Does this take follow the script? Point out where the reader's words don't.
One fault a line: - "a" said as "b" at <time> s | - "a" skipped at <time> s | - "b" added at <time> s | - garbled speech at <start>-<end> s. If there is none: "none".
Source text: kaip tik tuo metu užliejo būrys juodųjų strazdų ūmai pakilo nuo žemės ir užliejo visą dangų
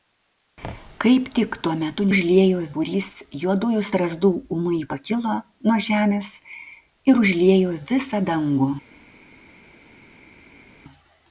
none